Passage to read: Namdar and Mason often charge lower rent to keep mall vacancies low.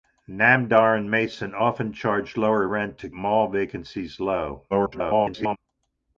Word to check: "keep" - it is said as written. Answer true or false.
false